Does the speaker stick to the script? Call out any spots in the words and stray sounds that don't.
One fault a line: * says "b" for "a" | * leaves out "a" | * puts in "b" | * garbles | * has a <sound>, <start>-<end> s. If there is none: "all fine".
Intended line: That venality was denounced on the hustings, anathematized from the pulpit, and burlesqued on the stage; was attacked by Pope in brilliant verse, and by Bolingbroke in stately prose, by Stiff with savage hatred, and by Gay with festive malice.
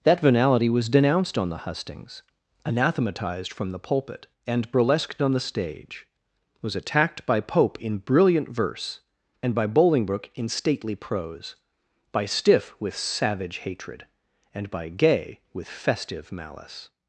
all fine